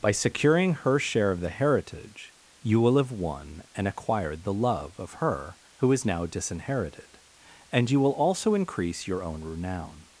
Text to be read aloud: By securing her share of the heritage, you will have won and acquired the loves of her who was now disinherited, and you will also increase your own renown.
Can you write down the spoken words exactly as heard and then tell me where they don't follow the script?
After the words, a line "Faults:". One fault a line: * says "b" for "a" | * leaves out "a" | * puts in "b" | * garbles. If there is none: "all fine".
By securing her share of the heritage, you will have won and acquired the love of her who is now disinherited, and you will also increase your own renown.
Faults:
* says "love" for "loves"
* says "is" for "was"